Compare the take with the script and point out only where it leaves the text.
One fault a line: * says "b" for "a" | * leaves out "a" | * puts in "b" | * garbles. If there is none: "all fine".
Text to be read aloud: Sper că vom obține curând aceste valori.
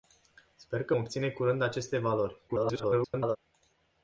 * leaves out "vom"
* garbles